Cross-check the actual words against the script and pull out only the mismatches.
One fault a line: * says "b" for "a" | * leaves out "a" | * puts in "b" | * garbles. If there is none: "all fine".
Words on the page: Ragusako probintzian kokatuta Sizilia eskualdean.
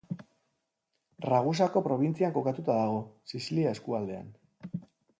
* puts in "dago"